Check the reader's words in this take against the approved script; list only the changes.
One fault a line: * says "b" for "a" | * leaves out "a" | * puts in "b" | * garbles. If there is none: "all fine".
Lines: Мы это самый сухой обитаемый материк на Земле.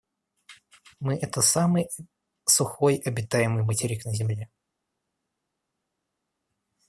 all fine